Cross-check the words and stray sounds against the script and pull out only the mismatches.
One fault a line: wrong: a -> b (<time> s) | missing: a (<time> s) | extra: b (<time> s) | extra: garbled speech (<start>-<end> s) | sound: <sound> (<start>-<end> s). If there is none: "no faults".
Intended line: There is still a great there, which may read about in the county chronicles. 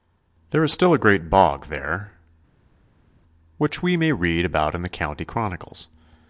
extra: bog (1.3 s)
extra: we (3.8 s)